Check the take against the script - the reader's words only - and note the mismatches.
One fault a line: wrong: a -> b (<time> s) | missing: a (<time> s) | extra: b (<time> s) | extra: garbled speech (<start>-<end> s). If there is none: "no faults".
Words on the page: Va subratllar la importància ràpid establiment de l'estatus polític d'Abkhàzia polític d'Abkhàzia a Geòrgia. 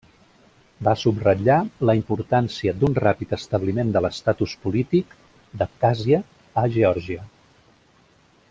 extra: d'un (2.8 s)
missing: polític d'Abkhàzia (6.2 s)